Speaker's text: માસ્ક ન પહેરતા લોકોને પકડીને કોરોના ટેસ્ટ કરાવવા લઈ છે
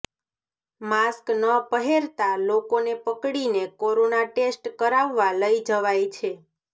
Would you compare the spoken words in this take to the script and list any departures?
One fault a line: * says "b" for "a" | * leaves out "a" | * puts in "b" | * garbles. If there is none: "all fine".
* puts in "જવાય"